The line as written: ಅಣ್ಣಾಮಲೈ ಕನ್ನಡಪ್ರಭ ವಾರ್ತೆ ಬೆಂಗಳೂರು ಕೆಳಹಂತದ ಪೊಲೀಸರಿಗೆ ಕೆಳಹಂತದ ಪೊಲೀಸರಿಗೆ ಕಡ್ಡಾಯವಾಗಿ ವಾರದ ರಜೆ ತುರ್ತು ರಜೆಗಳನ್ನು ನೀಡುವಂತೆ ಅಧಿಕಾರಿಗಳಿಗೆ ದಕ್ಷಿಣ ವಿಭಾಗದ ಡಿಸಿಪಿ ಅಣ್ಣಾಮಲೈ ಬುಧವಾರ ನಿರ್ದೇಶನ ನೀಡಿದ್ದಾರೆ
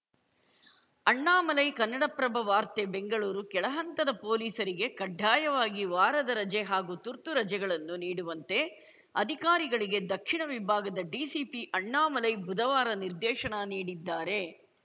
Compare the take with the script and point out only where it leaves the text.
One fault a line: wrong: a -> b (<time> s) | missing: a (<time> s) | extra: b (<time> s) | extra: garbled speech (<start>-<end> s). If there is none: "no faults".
missing: ಕೆಳಹಂತದ ಪೊಲೀಸರಿಗೆ (4.9 s)
extra: ಹಾಗೂ (6.6 s)